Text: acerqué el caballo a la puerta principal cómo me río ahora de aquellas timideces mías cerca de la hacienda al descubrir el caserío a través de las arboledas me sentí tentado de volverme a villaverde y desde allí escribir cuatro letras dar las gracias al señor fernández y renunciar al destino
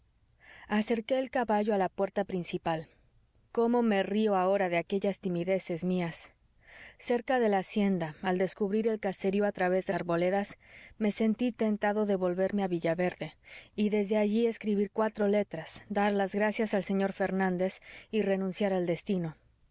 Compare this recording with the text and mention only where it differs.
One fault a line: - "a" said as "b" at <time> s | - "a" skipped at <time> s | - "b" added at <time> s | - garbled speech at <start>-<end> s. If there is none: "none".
- "las" skipped at 9.9 s